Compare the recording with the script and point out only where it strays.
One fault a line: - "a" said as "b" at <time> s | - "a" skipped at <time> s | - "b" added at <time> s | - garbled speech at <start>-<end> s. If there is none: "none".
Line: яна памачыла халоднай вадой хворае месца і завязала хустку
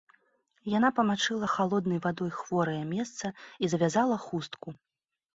none